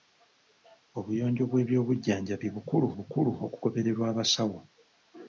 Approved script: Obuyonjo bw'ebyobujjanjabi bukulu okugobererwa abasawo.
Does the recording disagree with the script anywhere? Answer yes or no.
yes